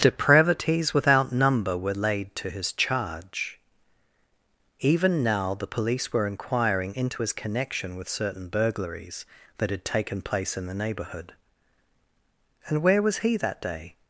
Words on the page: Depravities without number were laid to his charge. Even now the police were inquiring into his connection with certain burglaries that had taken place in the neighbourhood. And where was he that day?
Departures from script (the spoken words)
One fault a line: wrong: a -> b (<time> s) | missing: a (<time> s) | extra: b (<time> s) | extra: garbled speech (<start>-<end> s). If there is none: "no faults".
no faults